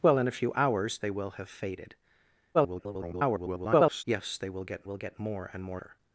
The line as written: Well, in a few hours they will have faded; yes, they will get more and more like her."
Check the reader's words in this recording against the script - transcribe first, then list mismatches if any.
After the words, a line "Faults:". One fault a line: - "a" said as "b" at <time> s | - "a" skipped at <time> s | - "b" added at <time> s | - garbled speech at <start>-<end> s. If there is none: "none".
Well, in a few hours they will have faded; [garbled] yes, they will get will get more and more her."
Faults:
- garbled speech at 2.5-4.0 s
- "will get" added at 4.8 s
- "like" skipped at 5.8 s